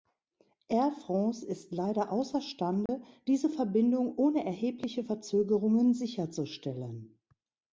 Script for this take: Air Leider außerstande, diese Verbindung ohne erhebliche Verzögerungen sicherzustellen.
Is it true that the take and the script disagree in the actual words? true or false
true